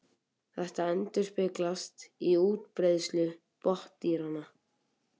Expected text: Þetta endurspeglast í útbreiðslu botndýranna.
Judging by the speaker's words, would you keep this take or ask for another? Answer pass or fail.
pass